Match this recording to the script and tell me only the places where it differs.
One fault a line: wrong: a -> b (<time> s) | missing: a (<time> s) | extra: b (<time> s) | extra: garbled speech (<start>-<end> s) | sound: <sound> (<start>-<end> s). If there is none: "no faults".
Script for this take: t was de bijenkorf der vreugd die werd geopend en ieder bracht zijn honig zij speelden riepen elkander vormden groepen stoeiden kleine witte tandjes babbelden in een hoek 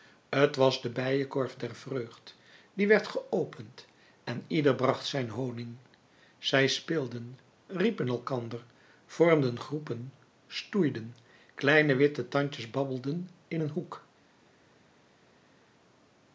no faults